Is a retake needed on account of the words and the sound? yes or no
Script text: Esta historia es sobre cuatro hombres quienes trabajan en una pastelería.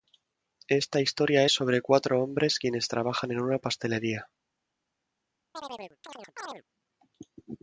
yes